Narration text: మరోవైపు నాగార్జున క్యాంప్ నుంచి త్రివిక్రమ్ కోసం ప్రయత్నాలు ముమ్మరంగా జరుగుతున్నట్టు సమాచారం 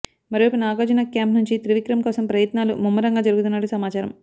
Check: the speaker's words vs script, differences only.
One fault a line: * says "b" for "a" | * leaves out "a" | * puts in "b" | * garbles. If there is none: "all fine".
all fine